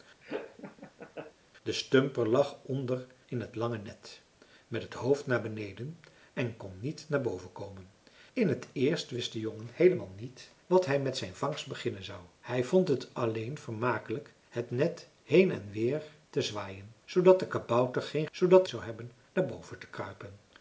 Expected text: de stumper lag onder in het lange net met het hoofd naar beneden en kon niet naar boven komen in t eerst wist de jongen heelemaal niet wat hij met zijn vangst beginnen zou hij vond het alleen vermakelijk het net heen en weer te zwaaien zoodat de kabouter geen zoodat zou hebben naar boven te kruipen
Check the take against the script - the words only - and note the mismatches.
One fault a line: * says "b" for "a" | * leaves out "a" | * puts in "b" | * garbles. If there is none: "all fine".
all fine